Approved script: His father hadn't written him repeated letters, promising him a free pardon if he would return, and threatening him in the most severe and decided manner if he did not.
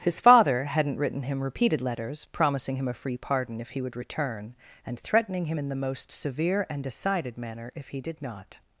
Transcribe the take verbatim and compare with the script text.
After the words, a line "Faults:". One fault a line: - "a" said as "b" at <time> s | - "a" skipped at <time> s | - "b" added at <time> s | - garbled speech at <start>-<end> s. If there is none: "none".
His father hadn't written him repeated letters, promising him a free pardon if he would return, and threatening him in the most severe and decided manner if he did not.
Faults:
none